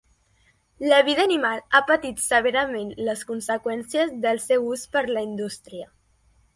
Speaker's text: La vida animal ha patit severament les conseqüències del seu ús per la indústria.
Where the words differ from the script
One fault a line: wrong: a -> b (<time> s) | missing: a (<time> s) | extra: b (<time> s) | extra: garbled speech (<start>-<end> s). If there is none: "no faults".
no faults